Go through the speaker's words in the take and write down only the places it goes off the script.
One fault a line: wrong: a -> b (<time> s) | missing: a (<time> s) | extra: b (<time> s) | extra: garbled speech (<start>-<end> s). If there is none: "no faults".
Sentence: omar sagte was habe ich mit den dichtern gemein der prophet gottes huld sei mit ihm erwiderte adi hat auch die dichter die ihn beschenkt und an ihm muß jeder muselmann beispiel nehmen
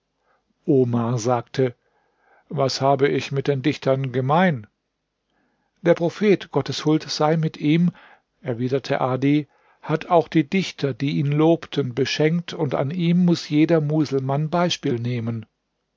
extra: lobten (11.3 s)